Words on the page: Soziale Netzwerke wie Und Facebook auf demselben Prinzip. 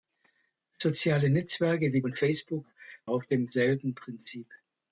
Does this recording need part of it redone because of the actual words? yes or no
no